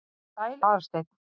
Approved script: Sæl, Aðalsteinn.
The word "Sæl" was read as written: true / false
true